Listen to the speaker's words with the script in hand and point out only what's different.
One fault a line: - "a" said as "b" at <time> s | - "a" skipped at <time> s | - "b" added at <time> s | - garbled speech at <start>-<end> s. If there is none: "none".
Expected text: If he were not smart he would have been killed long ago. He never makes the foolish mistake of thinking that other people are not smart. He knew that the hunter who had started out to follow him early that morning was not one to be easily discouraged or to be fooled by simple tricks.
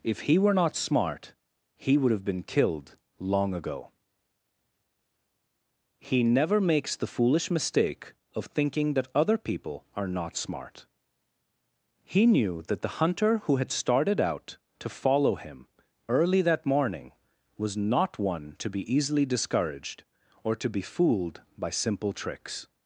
none